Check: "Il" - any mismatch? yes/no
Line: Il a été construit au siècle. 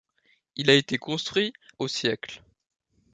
no